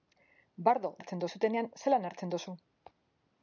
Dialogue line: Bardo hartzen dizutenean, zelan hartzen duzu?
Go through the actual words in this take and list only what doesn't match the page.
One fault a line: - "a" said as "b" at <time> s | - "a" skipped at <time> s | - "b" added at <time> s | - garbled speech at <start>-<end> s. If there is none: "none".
none